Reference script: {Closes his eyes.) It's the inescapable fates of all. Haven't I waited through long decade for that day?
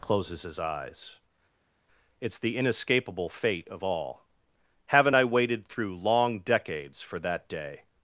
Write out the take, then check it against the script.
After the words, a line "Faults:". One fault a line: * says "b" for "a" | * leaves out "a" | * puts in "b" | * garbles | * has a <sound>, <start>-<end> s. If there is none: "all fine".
{Closes his eyes.) It's the inescapable fate of all. Haven't I waited through long decades for that day?
Faults:
* says "fate" for "fates"
* says "decades" for "decade"